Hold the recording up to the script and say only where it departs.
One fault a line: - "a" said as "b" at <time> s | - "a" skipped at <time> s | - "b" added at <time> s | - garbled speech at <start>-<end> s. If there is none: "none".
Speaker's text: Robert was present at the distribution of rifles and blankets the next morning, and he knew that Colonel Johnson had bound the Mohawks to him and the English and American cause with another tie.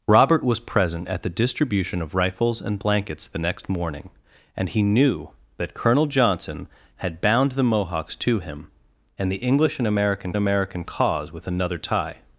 - "American" added at 10.3 s